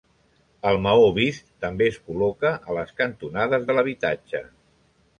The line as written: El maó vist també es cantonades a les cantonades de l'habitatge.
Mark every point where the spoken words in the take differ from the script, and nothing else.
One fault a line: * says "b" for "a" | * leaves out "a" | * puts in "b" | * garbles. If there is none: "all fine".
* says "col·loca" for "cantonades"